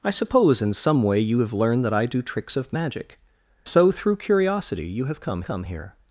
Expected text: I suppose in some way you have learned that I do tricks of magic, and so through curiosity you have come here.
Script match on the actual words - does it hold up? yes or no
no